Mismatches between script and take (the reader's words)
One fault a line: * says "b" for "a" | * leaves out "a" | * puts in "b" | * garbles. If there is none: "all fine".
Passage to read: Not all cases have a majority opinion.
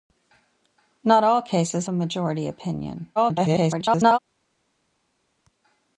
* leaves out "have"
* garbles